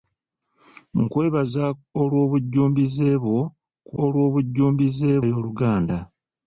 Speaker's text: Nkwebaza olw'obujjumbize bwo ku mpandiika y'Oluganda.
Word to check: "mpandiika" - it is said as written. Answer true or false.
false